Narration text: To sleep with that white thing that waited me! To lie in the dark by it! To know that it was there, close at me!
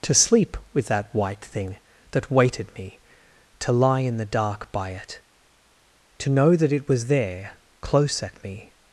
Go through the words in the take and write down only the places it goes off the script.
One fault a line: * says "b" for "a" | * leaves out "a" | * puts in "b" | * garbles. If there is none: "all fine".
all fine